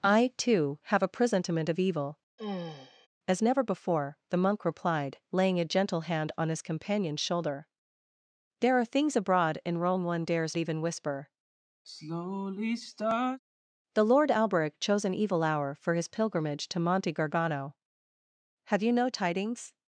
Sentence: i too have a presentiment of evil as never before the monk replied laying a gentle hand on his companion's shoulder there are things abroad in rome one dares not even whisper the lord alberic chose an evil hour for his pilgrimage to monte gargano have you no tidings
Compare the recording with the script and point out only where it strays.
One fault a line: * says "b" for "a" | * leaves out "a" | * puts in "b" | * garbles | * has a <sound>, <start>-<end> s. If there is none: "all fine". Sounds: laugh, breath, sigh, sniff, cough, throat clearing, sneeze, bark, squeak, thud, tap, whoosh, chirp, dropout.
* has a sigh, 2.4-3.1 s
* leaves out "not"
* has a sigh, 11.8-13.4 s